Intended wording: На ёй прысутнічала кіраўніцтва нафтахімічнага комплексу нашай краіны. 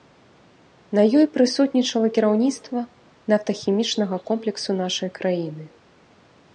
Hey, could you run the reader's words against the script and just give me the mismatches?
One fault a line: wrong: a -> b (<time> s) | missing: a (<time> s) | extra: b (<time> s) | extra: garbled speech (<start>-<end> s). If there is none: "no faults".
no faults